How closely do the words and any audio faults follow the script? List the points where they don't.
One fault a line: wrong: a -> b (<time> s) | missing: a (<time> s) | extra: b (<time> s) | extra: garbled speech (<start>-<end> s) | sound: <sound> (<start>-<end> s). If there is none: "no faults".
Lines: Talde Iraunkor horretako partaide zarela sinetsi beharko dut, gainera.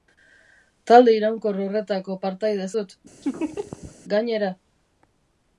missing: zarela sinetsi beharko (2.7 s)
sound: laugh (3.2-4.0 s)